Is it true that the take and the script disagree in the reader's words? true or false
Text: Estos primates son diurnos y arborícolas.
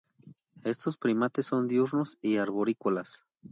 false